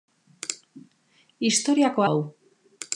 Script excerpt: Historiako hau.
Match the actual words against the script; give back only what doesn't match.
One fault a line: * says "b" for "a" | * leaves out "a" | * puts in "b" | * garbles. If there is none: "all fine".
all fine